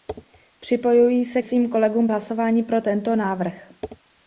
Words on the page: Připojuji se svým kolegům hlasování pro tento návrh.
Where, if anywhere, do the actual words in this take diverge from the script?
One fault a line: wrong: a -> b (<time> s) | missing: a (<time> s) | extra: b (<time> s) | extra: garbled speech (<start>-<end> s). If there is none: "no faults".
no faults